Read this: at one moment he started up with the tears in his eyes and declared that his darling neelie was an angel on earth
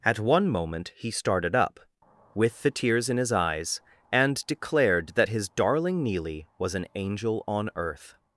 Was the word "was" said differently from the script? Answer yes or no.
no